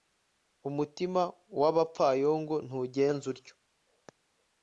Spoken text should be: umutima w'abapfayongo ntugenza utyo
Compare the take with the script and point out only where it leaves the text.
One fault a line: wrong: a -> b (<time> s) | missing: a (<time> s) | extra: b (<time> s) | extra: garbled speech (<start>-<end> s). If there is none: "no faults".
no faults